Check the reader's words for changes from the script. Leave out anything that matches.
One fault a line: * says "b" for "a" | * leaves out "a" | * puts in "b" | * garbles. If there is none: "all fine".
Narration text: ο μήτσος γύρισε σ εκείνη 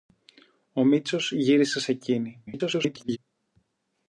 * garbles